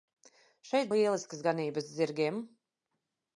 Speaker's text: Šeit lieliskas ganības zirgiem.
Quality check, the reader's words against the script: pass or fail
pass